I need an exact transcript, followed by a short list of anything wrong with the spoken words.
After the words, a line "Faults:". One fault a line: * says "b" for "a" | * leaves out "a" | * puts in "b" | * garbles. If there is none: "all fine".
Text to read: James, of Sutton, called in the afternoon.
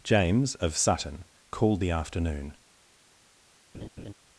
James, of Sutton, called the afternoon.
Faults:
* leaves out "in"